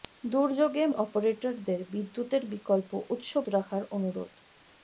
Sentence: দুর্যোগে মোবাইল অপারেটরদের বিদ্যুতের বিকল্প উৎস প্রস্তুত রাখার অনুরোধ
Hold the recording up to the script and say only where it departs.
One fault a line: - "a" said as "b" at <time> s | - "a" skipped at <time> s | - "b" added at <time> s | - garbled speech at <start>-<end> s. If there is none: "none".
- "মোবাইল" skipped at 0.8 s
- "প্রস্তুত" skipped at 3.3 s